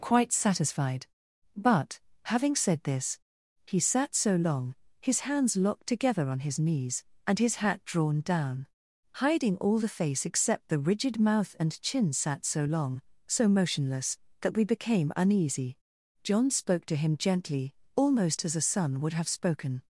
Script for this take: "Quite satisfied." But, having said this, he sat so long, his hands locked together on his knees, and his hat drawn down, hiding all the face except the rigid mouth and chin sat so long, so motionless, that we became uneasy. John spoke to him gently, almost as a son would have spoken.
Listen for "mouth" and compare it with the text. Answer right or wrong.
right